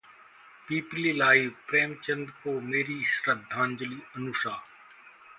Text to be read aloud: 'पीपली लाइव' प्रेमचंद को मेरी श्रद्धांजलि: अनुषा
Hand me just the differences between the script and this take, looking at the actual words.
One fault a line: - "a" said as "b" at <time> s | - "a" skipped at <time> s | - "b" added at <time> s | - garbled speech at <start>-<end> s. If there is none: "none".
none